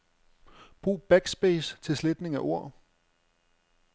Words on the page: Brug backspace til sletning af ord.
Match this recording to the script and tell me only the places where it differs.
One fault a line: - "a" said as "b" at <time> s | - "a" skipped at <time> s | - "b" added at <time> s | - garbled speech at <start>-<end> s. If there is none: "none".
none